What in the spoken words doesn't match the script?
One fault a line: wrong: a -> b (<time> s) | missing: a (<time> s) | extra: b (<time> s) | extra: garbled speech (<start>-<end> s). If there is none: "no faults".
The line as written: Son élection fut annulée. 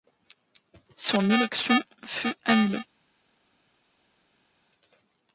no faults